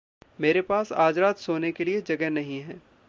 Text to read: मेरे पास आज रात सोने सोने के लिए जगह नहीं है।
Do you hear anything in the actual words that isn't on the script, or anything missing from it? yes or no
yes